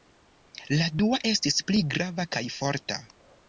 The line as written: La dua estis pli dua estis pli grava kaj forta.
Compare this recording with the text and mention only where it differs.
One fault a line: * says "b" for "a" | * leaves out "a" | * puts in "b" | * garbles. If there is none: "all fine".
* leaves out "dua estis pli"